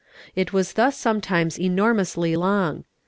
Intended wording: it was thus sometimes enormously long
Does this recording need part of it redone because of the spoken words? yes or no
no